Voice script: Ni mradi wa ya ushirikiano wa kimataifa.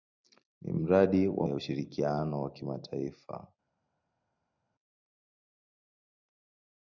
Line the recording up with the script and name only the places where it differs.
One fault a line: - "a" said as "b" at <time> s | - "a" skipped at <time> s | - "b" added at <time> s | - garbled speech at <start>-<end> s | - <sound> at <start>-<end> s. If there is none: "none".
none